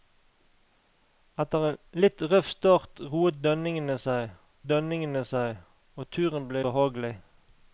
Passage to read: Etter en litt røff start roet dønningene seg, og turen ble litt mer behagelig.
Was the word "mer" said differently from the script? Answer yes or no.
yes